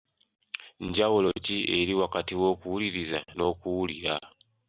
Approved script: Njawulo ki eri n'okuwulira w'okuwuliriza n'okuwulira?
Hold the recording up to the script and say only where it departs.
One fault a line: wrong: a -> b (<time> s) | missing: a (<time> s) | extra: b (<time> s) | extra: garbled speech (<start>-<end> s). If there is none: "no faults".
wrong: n'okuwulira -> wakati (2.0 s)